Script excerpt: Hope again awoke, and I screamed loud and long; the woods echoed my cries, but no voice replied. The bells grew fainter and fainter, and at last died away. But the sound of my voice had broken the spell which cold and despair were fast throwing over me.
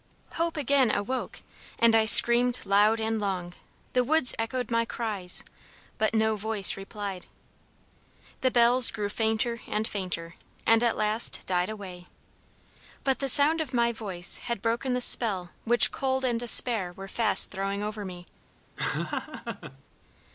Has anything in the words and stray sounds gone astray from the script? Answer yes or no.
yes